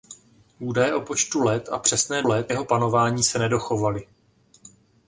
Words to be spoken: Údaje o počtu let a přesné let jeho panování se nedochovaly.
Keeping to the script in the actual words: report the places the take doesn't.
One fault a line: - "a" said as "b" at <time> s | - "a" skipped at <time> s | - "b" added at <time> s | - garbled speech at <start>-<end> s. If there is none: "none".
none